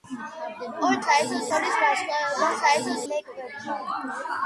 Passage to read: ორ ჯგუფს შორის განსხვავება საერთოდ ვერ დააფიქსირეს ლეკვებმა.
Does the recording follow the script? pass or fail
fail